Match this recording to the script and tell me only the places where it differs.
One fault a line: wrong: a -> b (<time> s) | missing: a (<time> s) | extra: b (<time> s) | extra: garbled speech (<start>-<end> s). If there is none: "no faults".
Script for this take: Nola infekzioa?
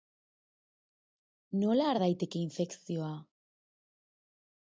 extra: har daiteke (1.9 s)